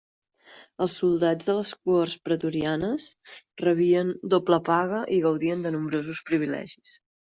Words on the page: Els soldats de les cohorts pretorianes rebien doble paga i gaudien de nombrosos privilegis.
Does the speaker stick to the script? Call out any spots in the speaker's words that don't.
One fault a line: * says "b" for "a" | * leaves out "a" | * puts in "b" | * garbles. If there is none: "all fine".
all fine